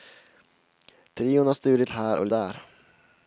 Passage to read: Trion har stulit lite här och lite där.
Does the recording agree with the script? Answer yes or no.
no